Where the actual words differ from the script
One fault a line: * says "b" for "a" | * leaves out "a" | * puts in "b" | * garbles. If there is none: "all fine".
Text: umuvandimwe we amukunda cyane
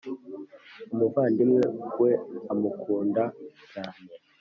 all fine